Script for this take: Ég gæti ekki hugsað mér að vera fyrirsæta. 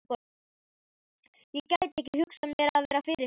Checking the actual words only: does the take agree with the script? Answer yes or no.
yes